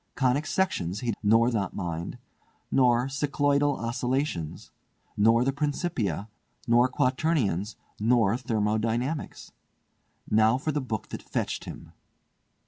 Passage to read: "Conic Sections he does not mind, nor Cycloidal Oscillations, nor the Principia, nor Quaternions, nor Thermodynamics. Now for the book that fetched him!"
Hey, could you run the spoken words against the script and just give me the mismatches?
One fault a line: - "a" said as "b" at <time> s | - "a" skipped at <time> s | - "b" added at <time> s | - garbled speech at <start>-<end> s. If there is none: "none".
- "does" said as "nor" at 1.2 s